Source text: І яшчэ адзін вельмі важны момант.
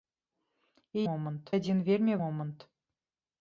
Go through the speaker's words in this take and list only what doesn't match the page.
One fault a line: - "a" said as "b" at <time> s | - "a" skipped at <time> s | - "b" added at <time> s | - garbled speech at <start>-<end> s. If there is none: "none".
- "яшчэ" said as "момант" at 1.1 s
- "важны" skipped at 2.1 s